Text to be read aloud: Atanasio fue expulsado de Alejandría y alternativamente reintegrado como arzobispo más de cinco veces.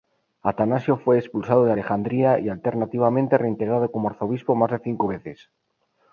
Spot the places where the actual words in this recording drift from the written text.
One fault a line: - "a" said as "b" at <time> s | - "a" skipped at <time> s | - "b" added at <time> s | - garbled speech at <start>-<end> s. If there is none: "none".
none